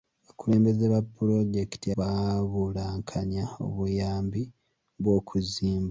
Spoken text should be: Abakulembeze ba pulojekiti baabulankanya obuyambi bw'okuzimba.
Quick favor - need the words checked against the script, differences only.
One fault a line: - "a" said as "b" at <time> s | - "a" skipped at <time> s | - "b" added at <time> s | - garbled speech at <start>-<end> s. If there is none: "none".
none